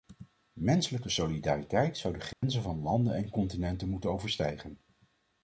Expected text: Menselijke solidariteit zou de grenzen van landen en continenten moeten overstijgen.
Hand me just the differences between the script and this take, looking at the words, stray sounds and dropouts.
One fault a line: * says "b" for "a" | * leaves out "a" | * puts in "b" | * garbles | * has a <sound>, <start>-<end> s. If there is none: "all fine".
* has a dropout, 2.3-2.4 s